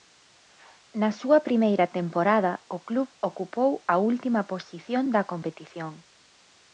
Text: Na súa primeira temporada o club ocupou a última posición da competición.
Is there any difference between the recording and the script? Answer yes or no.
no